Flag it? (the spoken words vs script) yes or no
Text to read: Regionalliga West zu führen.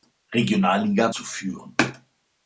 yes